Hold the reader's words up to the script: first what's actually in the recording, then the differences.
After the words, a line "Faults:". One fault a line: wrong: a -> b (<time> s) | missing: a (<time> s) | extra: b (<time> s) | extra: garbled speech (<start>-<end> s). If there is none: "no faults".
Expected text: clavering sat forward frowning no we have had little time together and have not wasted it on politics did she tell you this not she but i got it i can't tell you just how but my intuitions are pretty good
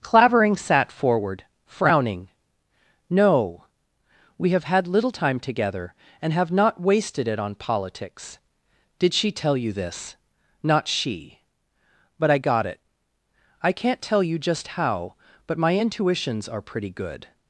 clavering sat forward frowning no we have had little time together and have not wasted it on politics did she tell you this not she but i got it i can't tell you just how but my intuitions are pretty good
Faults:
no faults